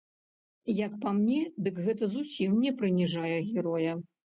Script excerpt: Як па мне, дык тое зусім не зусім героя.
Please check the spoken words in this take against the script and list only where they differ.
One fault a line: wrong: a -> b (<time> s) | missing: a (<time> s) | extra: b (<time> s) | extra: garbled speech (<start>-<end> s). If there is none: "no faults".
wrong: тое -> гэта (1.9 s)
wrong: зусім -> прыніжае (2.8 s)